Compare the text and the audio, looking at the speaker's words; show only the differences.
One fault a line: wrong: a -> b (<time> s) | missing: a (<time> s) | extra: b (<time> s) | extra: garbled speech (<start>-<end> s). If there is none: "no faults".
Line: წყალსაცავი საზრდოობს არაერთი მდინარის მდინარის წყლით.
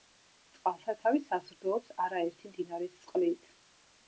missing: მდინარის (3.0 s)